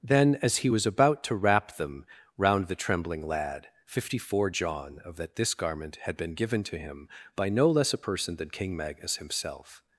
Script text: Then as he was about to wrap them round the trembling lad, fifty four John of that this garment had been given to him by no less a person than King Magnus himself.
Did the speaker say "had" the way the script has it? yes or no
yes